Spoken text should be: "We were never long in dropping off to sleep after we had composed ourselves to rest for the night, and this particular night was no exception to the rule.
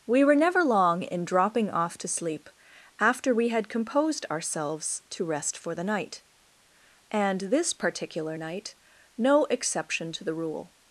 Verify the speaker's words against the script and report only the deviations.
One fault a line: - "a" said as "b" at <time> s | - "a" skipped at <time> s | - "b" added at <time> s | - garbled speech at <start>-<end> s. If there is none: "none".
- "was" skipped at 8.7 s